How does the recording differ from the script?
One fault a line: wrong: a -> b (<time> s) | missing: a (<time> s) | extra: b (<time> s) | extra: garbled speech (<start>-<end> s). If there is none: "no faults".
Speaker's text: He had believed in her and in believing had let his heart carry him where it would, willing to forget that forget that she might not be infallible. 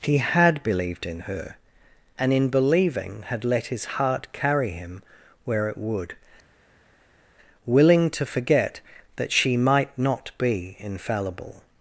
missing: forget that (9.3 s)